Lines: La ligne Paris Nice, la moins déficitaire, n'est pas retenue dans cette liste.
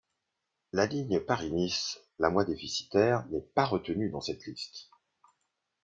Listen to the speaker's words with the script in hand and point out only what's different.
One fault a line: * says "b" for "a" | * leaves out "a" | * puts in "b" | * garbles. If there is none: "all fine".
all fine